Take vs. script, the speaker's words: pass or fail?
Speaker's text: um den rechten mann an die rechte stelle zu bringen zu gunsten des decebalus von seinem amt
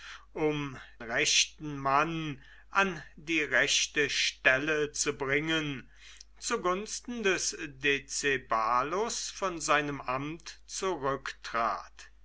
fail